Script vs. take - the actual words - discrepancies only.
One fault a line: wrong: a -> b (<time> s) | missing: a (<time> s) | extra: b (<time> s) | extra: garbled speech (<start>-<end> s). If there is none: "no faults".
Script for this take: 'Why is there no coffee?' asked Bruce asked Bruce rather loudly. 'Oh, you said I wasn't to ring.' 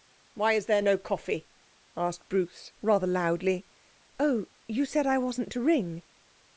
missing: asked Bruce (2.7 s)